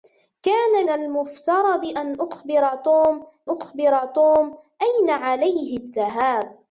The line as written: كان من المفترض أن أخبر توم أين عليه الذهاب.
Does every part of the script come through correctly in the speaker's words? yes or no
no